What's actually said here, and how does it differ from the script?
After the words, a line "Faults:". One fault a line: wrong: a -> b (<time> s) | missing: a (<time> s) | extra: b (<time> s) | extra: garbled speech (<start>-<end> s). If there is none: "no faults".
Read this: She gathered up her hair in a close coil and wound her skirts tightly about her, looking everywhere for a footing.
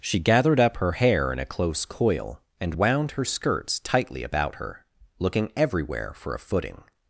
She gathered up her hair in a close coil and wound her skirts tightly about her, looking everywhere for a footing.
Faults:
no faults